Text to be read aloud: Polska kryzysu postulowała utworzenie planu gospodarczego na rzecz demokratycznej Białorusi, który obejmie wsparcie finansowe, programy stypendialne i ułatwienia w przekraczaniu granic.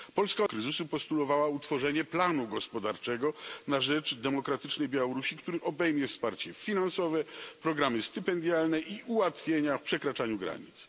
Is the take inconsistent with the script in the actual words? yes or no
no